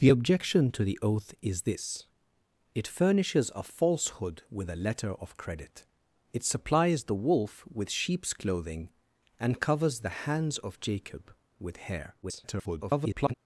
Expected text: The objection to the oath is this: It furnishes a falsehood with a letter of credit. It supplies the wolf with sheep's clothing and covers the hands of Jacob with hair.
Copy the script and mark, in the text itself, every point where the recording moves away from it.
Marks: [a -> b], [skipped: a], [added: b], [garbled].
The objection to the oath is this: It furnishes a falsehood with a letter of credit. It supplies the wolf with sheep's clothing and covers the hands of Jacob with hair. [garbled]